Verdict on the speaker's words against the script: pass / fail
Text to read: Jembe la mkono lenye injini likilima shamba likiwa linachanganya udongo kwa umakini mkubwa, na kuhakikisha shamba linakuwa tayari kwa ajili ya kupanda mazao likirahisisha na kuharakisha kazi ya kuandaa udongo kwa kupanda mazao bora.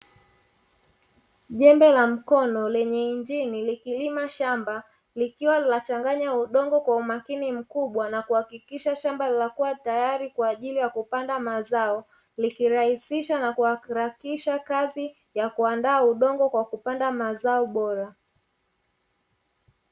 pass